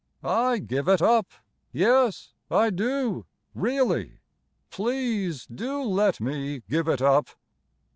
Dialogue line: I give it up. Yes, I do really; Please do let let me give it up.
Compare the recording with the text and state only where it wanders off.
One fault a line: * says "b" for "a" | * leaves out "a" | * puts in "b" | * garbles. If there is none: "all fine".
* leaves out "let"